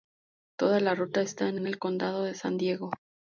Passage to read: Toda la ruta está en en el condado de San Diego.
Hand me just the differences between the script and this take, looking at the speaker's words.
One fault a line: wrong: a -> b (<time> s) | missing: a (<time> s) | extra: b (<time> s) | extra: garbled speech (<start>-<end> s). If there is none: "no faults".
no faults